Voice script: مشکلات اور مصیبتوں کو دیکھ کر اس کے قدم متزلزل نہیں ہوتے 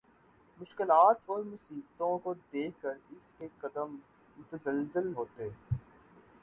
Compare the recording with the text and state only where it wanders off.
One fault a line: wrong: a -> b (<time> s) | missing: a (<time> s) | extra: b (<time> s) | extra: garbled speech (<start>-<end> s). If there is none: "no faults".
missing: نہیں (5.1 s)